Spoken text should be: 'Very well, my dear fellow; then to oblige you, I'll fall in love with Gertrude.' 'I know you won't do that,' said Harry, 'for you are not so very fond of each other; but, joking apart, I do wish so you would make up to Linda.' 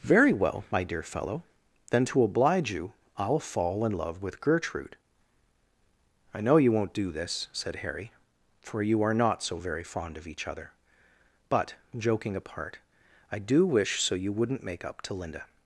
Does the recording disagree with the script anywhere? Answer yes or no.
yes